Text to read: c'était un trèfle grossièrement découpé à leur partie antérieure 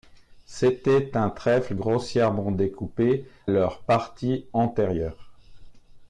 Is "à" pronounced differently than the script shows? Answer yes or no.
yes